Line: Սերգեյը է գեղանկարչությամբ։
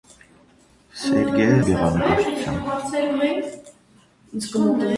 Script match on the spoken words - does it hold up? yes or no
yes